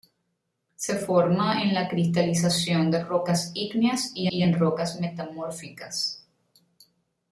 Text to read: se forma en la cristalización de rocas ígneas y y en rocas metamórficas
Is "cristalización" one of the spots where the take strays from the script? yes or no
no